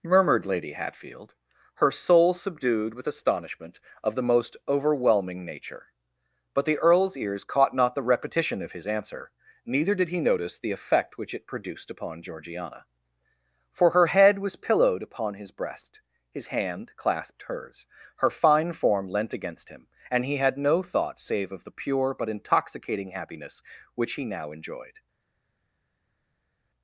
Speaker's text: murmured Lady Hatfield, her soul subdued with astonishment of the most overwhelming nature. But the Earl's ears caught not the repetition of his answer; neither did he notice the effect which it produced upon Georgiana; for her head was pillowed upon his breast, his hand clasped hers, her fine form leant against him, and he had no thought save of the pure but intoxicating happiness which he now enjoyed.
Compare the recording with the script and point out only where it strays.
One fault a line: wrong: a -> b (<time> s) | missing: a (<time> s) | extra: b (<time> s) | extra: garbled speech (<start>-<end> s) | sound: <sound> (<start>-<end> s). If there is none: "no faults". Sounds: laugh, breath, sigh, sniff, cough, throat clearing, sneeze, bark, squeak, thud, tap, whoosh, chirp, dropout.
no faults